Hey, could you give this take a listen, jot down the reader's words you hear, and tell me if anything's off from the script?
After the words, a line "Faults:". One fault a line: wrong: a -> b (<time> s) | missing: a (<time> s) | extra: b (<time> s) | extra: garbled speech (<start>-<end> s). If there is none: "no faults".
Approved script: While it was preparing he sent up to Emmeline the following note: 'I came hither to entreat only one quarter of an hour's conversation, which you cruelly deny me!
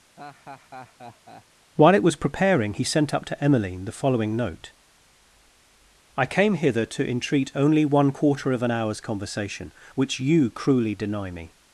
While it was preparing he sent up to Emmeline the following note: 'I came hither to entreat only one quarter of an hour's conversation, which you cruelly deny me!
Faults:
no faults